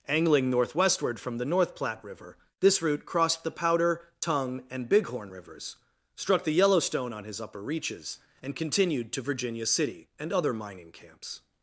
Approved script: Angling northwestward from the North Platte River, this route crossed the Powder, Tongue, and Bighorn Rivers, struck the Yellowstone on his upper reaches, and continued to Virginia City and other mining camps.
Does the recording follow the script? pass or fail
pass